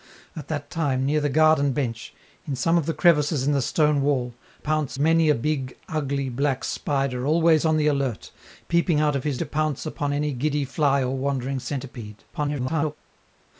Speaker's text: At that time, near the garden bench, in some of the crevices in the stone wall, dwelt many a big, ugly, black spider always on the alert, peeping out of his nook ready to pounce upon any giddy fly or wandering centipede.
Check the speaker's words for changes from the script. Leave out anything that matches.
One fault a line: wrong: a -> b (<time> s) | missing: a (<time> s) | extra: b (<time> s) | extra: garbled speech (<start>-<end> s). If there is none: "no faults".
wrong: dwelt -> pounce (4.6 s)
missing: nook ready (9.4 s)
extra: garbled speech (12.3-13.0 s)